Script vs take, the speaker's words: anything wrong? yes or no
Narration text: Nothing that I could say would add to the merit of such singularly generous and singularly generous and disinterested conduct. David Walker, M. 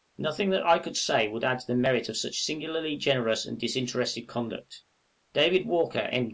yes